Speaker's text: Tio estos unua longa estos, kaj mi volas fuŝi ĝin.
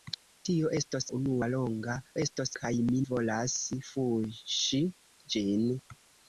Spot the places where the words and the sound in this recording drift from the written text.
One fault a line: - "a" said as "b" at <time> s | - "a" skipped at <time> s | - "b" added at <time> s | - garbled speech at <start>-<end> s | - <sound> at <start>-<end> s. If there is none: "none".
none